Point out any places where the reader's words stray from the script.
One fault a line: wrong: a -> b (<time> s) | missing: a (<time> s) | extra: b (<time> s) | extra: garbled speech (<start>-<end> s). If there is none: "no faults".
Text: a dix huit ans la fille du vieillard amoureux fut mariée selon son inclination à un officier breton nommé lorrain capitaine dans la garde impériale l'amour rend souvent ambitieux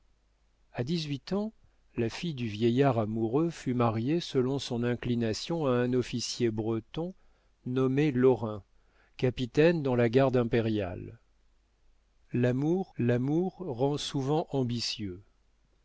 extra: l'amour (13.0 s)